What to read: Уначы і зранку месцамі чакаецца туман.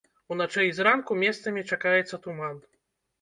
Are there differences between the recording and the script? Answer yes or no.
no